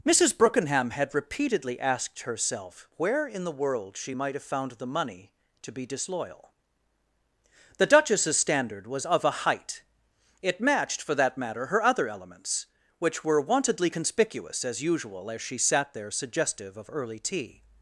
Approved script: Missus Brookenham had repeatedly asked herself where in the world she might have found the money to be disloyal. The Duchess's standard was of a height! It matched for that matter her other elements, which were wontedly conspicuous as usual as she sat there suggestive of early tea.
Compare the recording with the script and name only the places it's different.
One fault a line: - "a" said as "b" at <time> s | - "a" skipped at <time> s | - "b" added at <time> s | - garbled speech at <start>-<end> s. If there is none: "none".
none